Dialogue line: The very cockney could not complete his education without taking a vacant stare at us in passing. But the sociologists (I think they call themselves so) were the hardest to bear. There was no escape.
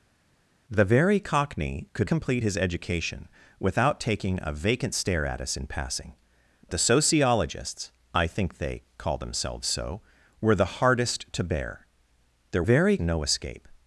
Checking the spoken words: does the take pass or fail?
fail